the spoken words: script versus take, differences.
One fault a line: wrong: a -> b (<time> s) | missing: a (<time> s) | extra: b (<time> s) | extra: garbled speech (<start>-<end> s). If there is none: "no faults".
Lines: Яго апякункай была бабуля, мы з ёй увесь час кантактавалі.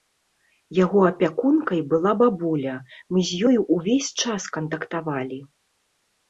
no faults